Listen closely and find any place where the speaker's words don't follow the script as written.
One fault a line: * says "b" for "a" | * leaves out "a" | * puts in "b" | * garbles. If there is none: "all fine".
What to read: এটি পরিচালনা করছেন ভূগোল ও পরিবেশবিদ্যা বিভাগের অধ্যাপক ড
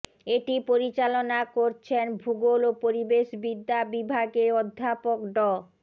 all fine